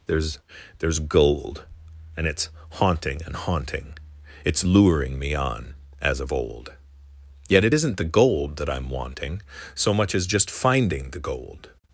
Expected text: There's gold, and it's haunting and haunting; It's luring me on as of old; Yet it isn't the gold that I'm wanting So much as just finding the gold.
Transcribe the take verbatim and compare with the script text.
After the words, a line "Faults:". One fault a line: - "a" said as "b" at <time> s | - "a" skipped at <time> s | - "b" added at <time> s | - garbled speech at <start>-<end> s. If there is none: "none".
There's there's gold, and it's haunting and haunting; It's luring me on as of old; Yet it isn't the gold that I'm wanting So much as just finding the gold.
Faults:
- "there's" added at 0.8 s